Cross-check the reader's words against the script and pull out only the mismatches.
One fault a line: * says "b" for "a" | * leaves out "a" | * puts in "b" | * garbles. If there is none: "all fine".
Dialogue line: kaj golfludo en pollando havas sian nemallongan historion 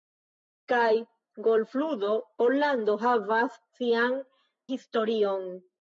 * leaves out "en"
* leaves out "nemallongan"